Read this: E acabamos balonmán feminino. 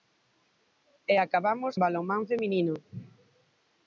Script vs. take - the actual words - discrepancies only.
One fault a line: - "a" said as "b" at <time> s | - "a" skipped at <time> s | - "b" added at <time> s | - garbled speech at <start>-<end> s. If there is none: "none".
none